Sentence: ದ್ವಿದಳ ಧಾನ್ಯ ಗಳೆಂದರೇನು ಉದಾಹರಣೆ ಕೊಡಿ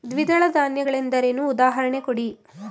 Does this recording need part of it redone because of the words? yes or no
no